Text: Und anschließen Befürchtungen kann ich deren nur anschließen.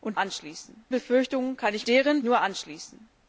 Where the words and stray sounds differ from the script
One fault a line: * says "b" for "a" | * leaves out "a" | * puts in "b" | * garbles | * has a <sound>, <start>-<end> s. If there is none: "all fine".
all fine